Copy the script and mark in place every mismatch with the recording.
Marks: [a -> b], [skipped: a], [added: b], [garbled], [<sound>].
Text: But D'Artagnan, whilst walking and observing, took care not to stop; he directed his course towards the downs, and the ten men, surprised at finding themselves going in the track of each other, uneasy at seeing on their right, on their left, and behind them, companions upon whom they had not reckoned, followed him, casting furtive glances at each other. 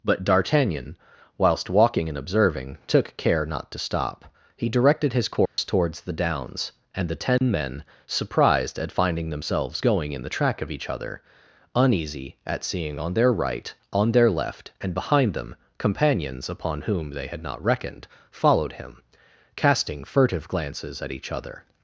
But D'Artagnan, whilst walking and observing, took care not to stop; he directed his course [dropout] towards the downs, and the ten [dropout] men, surprised at finding themselves going in the track of each other, uneasy at seeing on their right, on their left, and behind them, companions upon whom they had not reckoned, followed him, casting furtive glances at each other.